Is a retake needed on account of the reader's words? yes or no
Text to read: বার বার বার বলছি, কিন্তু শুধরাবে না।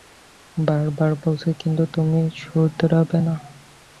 yes